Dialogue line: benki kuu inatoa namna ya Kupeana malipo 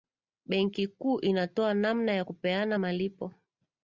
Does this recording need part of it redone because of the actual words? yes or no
no